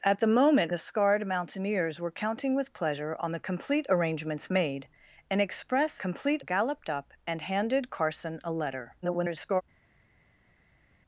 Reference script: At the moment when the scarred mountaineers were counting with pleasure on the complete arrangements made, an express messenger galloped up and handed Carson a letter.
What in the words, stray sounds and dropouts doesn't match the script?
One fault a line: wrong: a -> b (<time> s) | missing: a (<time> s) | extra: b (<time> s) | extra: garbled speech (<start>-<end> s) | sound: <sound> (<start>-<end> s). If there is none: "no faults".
missing: when (0.7 s)
wrong: messenger -> complete (6.0 s)
extra: garbled speech (9.0-9.6 s)